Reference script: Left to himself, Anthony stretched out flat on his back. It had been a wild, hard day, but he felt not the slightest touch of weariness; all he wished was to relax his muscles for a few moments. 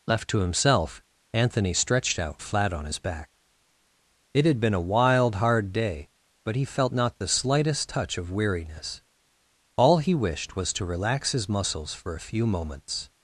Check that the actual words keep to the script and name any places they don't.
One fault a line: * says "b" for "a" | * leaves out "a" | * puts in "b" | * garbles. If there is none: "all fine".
all fine